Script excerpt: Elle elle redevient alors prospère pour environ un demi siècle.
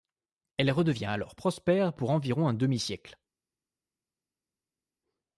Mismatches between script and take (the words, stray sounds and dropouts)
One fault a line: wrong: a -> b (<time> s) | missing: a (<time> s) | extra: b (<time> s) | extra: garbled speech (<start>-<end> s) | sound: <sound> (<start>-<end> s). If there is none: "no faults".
missing: elle (0.7 s)